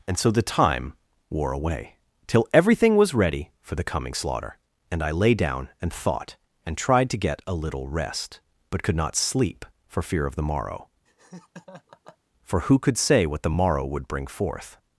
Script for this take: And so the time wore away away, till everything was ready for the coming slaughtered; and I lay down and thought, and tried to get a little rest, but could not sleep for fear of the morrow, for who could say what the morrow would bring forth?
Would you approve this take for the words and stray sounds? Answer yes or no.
no